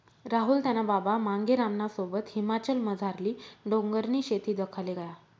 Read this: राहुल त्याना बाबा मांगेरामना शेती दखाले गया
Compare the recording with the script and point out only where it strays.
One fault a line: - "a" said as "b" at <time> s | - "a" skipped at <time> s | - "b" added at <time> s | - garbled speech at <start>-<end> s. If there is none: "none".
- "सोबत हिमाचलमझारली डोंगरनी" added at 1.9 s